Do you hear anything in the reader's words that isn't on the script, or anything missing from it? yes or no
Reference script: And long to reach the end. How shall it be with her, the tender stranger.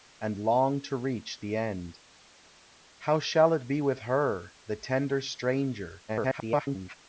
yes